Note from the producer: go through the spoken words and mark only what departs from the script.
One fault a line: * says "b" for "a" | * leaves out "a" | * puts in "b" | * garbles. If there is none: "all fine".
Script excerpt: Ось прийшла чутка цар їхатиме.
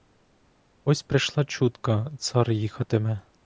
all fine